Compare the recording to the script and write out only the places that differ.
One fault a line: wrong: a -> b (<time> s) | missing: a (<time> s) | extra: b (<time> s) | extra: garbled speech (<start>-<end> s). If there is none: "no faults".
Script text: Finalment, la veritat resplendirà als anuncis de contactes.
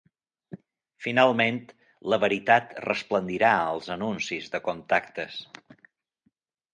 no faults